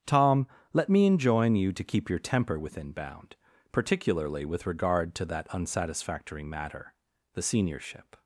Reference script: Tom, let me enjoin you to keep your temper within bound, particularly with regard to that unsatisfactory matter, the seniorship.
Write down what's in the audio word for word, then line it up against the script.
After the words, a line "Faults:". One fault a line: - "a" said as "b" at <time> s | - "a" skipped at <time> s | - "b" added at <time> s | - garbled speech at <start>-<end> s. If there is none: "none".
Tom, let me enjoin you to keep your temper within bound, particularly with regard to that unsatisfactory matter, the seniorship.
Faults:
none